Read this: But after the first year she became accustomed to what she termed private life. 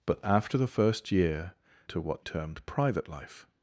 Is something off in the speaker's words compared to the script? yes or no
yes